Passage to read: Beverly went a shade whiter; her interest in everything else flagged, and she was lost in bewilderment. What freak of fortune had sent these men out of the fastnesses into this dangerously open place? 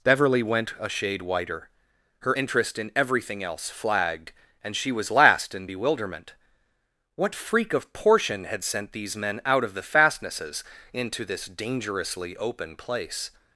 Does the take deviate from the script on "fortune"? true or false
true